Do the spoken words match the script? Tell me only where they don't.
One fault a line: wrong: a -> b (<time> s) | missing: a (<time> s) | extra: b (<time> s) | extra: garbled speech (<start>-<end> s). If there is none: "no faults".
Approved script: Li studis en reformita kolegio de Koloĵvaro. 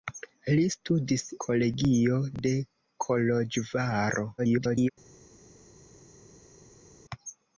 missing: en reformita (1.2 s)
extra: garbled speech (4.4-4.9 s)